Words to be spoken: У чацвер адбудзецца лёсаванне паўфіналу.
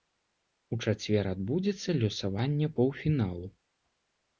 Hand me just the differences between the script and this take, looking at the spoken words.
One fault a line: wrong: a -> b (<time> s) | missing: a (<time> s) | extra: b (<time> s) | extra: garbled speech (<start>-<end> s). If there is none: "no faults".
no faults